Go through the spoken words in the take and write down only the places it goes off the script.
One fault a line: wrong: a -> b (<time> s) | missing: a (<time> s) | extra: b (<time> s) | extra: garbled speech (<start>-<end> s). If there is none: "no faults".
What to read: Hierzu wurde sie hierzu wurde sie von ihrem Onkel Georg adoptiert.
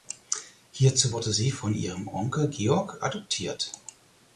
missing: hierzu wurde sie (1.5 s)